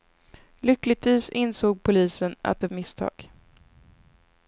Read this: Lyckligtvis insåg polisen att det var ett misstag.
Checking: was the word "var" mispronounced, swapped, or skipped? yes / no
yes